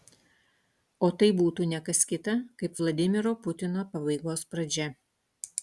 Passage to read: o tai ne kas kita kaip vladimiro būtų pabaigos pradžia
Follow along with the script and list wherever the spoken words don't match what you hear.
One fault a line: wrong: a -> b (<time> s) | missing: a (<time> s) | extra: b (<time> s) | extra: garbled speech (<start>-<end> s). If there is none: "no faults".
extra: būtų (1.4 s)
wrong: būtų -> putino (3.5 s)